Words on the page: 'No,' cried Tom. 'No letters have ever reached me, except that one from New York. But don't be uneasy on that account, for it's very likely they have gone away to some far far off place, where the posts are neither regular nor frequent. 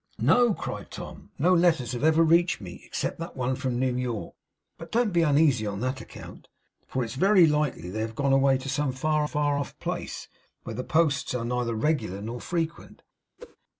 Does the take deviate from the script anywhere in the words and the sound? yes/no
yes